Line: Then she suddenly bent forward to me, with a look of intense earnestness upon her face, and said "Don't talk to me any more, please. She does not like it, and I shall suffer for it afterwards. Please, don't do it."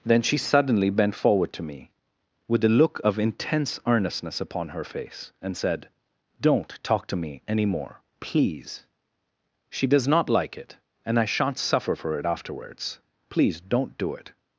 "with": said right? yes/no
yes